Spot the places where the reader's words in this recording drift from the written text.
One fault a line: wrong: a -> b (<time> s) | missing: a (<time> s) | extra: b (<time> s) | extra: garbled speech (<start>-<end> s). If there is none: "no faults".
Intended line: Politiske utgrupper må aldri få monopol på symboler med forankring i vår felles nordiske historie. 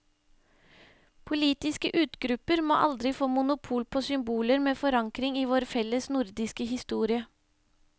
no faults